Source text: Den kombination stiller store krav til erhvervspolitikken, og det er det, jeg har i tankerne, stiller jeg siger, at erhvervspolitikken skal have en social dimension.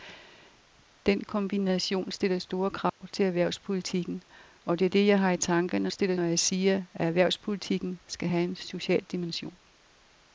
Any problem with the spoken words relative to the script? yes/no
no